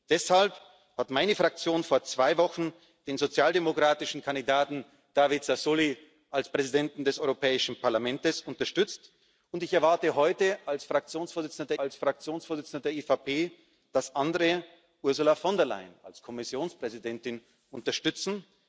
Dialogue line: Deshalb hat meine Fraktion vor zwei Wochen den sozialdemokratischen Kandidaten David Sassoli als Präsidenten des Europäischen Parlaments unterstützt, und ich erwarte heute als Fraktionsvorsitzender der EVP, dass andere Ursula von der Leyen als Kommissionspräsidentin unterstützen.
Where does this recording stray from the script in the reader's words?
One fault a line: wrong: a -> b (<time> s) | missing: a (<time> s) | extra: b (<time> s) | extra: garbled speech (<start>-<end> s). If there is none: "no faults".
extra: als Fraktionsvorsitzender (11.8 s)